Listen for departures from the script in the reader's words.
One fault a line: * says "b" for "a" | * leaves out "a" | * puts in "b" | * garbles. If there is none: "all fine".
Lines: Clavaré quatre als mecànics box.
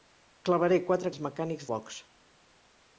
all fine